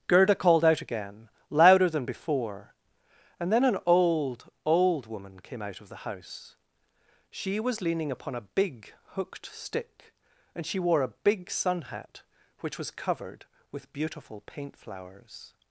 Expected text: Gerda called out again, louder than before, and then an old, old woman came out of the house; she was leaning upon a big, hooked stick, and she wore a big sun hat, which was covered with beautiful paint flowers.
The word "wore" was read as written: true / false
true